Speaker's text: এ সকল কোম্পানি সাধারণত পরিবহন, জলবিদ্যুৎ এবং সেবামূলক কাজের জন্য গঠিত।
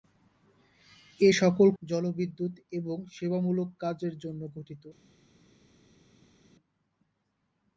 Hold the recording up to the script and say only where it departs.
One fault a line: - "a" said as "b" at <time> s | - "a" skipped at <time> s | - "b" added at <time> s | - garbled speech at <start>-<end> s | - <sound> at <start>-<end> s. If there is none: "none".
- "কোম্পানি সাধারণত পরিবহন" skipped at 1.7 s